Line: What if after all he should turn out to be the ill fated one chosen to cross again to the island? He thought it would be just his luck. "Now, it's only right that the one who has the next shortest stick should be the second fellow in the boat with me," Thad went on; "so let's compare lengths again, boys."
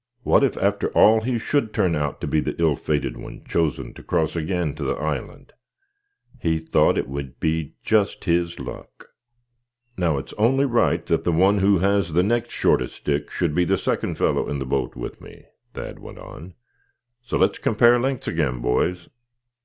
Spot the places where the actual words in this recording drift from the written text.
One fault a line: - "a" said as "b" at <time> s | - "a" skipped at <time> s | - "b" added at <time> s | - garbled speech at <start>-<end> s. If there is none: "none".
none